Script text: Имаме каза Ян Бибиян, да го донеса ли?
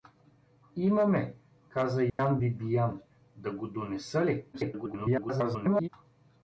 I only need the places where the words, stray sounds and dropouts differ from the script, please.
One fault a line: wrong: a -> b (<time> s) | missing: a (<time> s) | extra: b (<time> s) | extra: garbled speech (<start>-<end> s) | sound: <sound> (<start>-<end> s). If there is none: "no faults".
sound: dropout (2.1-2.2 s)
extra: garbled speech (4.5-5.9 s)